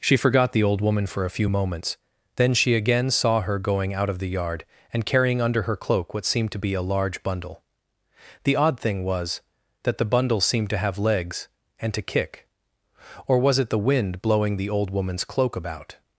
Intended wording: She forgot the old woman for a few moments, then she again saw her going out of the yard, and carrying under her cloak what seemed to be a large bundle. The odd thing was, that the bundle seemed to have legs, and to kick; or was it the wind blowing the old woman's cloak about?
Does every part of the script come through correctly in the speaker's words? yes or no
yes